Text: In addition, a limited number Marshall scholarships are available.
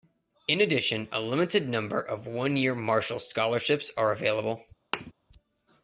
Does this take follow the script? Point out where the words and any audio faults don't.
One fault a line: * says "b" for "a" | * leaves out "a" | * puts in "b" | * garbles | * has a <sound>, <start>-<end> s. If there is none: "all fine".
* puts in "of one year"
* has a thud, 4.9-5.1 s